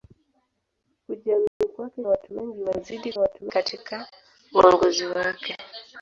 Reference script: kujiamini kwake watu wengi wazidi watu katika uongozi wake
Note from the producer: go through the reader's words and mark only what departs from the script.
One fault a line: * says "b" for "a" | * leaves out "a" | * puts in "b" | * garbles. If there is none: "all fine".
all fine